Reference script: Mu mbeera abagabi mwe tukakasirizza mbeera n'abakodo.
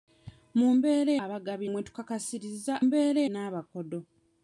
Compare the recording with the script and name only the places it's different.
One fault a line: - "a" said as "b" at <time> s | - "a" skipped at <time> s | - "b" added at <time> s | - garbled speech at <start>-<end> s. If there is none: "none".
none